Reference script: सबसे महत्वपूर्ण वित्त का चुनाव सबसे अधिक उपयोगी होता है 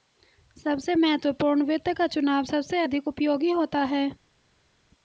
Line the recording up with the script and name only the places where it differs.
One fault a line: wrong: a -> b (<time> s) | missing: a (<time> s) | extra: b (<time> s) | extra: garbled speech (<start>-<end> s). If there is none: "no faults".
no faults